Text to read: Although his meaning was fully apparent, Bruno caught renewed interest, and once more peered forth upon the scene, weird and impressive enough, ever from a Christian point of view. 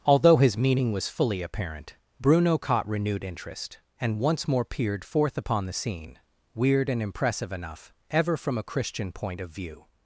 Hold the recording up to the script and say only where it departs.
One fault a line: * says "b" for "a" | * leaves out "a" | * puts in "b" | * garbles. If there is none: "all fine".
all fine